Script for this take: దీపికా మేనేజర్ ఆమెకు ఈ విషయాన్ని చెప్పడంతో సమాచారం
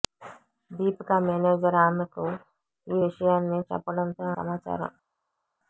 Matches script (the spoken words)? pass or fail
pass